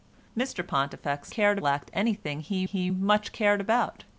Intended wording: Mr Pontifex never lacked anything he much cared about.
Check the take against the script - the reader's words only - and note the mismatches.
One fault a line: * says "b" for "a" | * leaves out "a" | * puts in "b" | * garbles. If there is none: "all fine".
* says "cared" for "never"
* puts in "he"